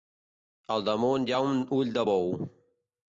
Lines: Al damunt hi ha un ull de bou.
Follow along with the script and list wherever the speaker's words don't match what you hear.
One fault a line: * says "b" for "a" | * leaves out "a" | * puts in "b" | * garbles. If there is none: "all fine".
all fine